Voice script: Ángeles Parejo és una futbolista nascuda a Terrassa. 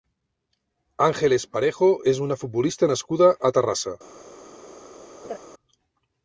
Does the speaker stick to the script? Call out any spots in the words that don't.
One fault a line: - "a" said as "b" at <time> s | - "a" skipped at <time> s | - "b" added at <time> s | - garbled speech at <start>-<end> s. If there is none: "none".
none